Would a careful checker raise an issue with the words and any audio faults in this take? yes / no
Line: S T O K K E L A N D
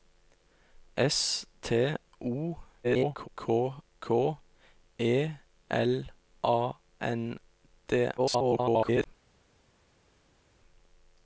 yes